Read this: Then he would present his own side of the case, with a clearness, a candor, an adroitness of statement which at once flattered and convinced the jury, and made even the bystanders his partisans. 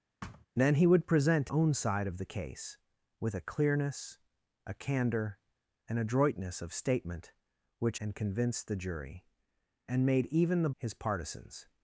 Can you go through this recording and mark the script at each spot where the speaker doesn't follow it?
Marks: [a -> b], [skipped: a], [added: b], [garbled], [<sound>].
[thud] Then he would present [skipped: his] own side of the case, with a clearness, a candor, an adroitness of statement which [skipped: at once flattered] and convinced the jury, and made even the [skipped: bystanders] his partisans.